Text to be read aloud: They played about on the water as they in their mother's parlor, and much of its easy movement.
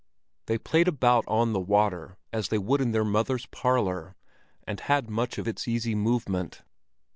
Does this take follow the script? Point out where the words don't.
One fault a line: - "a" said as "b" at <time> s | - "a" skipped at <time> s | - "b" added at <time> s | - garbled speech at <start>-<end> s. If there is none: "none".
- "would" added at 2.6 s
- "had" added at 4.8 s